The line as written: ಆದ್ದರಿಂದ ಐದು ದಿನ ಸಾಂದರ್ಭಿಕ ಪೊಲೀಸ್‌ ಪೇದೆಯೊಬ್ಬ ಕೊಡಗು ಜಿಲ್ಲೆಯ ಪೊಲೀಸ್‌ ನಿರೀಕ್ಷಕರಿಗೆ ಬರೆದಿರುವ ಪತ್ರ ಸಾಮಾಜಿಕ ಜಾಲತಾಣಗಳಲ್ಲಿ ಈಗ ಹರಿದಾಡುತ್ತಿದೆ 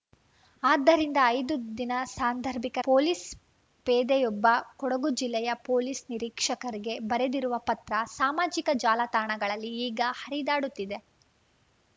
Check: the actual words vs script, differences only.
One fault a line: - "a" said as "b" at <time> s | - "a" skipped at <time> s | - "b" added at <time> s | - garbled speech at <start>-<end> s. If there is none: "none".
none